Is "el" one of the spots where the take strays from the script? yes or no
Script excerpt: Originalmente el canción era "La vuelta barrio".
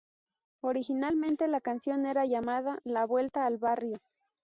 yes